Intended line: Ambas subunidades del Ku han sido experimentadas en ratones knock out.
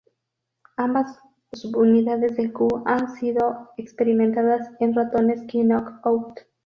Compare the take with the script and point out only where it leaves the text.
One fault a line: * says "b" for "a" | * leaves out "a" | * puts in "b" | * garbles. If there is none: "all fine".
all fine